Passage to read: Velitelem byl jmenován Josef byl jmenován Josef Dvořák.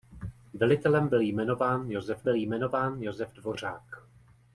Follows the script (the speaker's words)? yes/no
yes